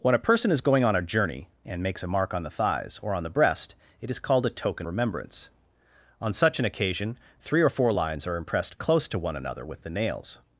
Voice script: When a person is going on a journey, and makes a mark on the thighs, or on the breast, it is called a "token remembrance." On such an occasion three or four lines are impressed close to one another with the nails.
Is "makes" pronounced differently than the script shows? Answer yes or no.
no